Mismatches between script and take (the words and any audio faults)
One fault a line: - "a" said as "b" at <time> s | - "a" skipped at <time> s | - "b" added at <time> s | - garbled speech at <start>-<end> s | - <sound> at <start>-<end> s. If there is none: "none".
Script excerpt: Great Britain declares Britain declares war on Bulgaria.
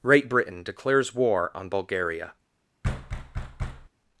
- "Britain declares" skipped at 1.1 s
- thud at 2.8-3.9 s